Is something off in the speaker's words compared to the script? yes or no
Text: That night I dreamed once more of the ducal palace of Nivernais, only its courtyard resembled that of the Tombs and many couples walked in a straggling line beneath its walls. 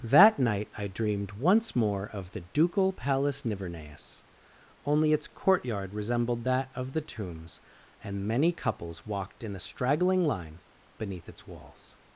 yes